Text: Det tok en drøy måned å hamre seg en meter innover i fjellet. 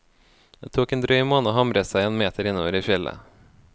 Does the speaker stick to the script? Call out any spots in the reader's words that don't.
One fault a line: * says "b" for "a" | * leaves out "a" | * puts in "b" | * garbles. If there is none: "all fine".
all fine